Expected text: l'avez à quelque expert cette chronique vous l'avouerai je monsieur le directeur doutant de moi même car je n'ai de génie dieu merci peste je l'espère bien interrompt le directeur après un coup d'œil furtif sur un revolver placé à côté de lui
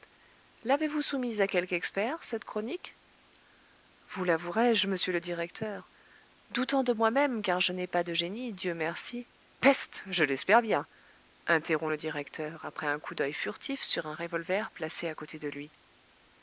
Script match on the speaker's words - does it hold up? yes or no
no